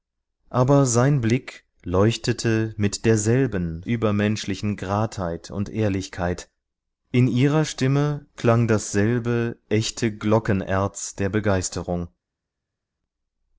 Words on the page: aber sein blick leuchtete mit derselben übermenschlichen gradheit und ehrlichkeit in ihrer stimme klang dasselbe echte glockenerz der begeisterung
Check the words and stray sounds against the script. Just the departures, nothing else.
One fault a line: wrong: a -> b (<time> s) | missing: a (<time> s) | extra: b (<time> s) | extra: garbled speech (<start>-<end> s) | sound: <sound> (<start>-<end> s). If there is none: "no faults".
no faults